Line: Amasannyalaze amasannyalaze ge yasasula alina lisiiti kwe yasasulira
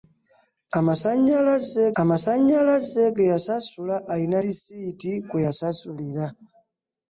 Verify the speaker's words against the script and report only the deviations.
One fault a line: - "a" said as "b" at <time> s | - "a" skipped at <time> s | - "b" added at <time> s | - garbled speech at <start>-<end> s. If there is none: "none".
none